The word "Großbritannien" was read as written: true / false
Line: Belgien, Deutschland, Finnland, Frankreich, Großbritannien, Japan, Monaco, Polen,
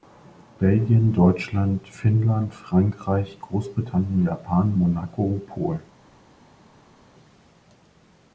true